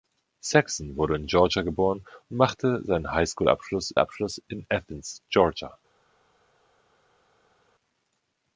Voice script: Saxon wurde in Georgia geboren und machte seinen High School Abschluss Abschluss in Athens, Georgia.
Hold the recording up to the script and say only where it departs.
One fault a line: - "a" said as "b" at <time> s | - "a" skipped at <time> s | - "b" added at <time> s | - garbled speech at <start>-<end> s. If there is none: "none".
none